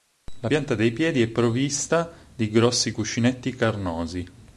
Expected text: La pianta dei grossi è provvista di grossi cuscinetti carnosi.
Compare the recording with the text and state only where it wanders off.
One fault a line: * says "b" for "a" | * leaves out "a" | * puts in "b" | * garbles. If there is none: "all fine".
* says "piedi" for "grossi"